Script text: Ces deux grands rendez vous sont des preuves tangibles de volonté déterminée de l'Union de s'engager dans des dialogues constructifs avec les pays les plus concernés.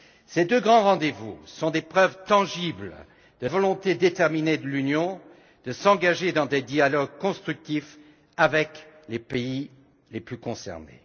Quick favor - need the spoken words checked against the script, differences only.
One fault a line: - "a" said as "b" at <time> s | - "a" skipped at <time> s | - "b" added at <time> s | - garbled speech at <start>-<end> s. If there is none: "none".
none